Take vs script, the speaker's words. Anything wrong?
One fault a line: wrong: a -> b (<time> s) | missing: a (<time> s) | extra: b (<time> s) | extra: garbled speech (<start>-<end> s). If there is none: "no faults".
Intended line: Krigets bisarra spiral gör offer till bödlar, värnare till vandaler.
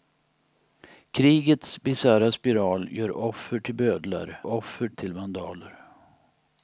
wrong: värnare -> offer (4.5 s)